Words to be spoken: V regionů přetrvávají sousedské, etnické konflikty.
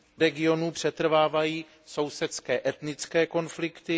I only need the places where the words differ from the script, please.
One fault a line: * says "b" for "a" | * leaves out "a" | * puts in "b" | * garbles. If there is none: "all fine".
all fine